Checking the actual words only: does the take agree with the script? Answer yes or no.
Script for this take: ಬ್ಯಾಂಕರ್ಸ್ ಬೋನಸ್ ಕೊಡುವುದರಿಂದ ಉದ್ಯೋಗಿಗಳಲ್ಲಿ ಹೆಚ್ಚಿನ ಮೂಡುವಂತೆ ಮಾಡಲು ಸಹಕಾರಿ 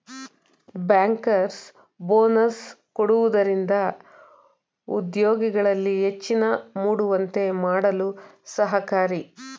yes